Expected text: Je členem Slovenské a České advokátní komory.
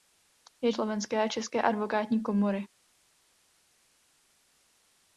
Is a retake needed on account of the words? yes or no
yes